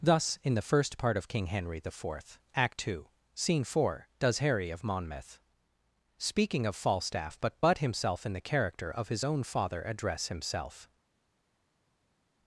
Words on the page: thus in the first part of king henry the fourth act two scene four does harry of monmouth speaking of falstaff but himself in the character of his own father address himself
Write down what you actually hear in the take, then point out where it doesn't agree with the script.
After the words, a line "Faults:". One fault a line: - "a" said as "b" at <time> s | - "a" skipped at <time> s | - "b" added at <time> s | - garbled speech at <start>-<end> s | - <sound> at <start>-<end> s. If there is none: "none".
thus in the first part of king henry the fourth act two scene four does harry of monmouth speaking of falstaff but but himself in the character of his own father address himself
Faults:
- "but" added at 7.6 s